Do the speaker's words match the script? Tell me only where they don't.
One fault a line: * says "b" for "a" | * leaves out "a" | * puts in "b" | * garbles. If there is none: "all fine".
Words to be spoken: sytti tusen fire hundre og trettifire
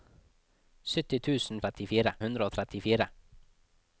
* says "trettifire" for "fire"